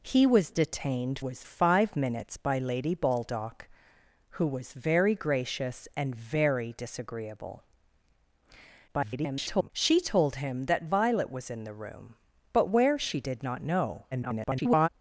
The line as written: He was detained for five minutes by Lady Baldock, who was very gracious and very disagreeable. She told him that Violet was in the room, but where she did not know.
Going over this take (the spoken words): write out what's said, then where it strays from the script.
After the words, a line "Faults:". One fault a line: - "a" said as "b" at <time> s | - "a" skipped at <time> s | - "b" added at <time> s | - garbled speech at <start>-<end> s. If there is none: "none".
He was detained was five minutes by Lady Baldock, who was very gracious and very disagreeable. [garbled] She told him that Violet was in the room, but where she did not know. [garbled]
Faults:
- "for" said as "was" at 1.2 s
- garbled speech at 8.9-9.7 s
- garbled speech at 14.1-14.9 s